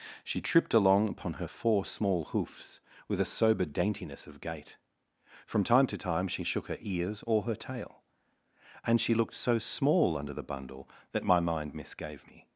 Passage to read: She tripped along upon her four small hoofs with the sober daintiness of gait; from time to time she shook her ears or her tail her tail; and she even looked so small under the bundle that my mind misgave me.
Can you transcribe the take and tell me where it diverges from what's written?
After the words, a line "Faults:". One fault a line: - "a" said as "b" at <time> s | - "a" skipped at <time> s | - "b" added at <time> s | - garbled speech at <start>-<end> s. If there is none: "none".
She tripped along upon her four small hoofs with a sober daintiness of gait; from time to time she shook her ears or her tail; and she looked so small under the bundle that my mind misgave me.
Faults:
- "the" said as "a" at 3.2 s
- "her tail" skipped at 8.0 s
- "even" skipped at 9.1 s